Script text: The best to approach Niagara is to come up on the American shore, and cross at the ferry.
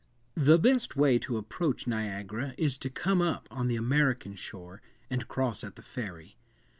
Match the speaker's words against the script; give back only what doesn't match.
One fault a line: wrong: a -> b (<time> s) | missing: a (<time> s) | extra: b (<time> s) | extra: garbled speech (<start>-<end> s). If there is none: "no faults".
extra: way (0.9 s)